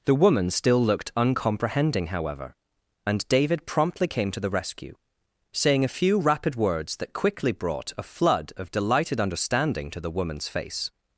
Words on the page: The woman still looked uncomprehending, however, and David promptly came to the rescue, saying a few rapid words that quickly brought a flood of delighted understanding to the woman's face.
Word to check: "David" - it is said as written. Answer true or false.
true